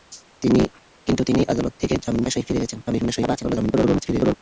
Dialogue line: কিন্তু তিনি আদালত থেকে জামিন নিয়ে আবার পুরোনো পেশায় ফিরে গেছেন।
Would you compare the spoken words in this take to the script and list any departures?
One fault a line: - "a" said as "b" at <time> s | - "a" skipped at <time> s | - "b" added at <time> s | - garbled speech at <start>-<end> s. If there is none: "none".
- "নিয়ে আবার পুরোনো" skipped at 2.2 s
- garbled speech at 2.9-4.3 s